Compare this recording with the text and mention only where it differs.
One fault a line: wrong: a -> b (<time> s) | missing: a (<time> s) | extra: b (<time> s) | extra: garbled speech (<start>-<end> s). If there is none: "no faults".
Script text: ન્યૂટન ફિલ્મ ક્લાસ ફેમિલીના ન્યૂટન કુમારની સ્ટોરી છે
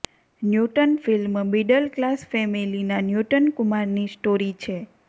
extra: મિડલ (1.5 s)